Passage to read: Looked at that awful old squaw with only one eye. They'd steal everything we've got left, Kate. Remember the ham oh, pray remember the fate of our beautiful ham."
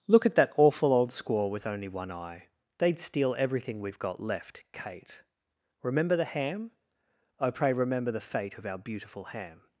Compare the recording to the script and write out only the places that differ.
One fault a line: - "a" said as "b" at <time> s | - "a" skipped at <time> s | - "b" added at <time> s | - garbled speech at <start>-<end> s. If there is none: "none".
- "Looked" said as "Look" at 0.1 s